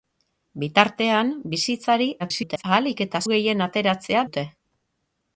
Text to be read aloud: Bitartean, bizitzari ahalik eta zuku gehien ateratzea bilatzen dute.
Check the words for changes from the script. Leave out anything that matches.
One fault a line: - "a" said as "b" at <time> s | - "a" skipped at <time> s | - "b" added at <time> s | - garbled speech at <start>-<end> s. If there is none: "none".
- garbled speech at 2.2-2.6 s
- "zuku" skipped at 3.2 s
- "bilatzen" skipped at 4.3 s